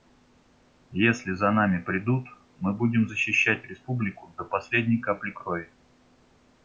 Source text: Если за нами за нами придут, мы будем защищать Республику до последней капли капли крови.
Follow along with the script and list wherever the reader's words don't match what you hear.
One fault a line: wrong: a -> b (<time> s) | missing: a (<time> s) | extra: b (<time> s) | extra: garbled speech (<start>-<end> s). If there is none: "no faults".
missing: за нами (1.8 s)
missing: капли (5.3 s)